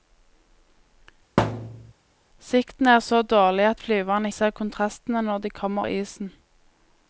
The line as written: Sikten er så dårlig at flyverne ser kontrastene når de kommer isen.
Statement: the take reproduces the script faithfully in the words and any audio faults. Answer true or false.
false